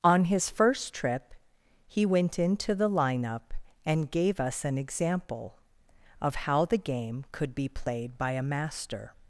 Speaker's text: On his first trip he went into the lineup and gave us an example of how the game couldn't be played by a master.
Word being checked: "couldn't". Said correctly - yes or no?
no